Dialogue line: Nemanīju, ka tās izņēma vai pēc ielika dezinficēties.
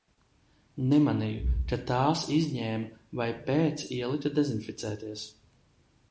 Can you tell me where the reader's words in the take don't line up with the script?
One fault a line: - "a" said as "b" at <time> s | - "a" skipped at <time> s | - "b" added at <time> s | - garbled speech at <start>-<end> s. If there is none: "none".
none